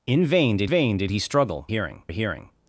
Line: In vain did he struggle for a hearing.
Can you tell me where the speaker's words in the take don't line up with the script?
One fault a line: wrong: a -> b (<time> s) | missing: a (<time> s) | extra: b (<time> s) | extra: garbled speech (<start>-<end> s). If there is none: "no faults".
extra: vain did (0.6 s)
wrong: for -> hearing (1.7 s)